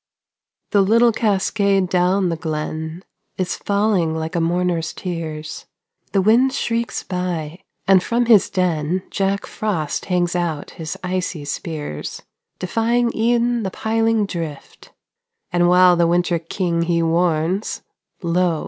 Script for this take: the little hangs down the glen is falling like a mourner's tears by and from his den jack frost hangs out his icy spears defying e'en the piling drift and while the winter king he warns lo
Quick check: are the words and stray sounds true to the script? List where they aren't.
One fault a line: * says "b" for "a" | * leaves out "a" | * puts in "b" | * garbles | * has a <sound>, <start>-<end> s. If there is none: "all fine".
* says "cascade" for "hangs"
* puts in "the wind shrieks"